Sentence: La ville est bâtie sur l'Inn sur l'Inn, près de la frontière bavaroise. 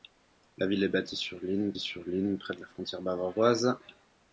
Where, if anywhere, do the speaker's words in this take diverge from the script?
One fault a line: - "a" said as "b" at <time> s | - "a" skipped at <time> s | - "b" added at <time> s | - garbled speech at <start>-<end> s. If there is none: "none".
none